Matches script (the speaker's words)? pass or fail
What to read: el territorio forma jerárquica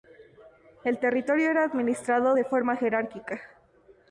fail